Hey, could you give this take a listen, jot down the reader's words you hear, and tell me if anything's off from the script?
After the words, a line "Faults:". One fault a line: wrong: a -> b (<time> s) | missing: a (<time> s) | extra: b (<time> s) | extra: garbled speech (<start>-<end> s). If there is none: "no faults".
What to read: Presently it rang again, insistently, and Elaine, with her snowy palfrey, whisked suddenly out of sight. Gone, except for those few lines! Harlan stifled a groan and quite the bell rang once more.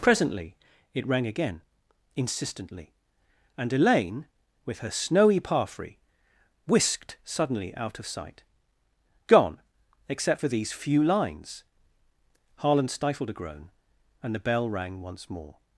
Presently it rang again, insistently, and Elaine, with her snowy palfrey, whisked suddenly out of sight. Gone, except for these few lines! Harlan stifled a groan and the bell rang once more.
Faults:
wrong: those -> these (10.5 s)
missing: quite (14.3 s)